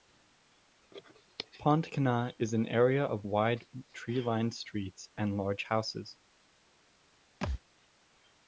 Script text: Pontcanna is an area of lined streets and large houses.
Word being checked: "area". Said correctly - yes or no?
yes